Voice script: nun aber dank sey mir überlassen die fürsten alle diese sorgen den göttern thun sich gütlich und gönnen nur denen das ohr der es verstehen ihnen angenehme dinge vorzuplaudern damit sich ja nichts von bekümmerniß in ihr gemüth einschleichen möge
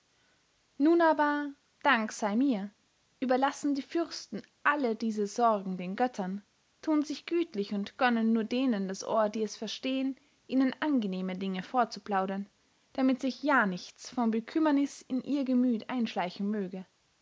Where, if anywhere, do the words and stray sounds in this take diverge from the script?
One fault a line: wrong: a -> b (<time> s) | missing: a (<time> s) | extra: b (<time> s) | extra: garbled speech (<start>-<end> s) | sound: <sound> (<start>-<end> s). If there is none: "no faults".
wrong: der -> die (9.3 s)